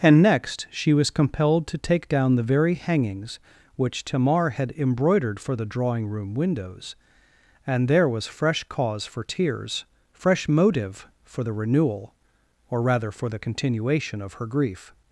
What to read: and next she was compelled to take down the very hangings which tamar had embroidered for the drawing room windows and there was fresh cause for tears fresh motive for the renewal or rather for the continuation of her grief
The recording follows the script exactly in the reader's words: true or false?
true